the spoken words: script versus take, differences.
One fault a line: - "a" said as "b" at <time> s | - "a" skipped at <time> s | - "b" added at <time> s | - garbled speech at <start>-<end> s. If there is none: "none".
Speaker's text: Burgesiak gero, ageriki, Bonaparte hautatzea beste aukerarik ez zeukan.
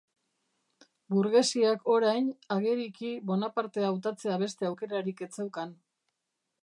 - "gero" said as "orain" at 1.9 s